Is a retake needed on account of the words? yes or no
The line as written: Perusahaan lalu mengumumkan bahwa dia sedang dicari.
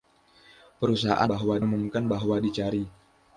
yes